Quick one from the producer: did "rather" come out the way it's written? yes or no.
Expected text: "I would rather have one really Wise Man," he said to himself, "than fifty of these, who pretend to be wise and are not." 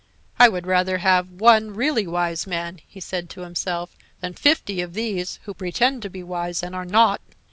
yes